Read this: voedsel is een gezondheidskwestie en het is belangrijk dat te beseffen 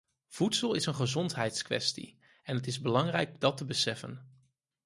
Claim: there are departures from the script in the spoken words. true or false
false